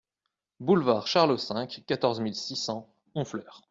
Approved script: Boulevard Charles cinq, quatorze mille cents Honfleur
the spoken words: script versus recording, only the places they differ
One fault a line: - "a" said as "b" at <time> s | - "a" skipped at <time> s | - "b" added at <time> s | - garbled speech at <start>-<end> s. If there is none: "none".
- "six" added at 2.3 s